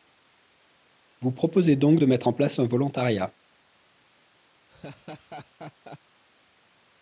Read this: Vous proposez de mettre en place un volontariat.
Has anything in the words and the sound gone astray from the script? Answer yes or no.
yes